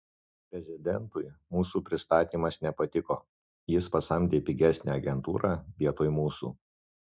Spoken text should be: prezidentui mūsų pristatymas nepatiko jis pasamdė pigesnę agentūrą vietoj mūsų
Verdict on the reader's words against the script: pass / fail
pass